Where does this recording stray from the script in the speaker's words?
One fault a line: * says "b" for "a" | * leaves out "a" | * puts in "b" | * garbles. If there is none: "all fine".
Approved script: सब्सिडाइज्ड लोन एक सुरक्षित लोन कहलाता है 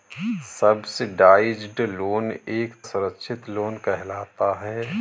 all fine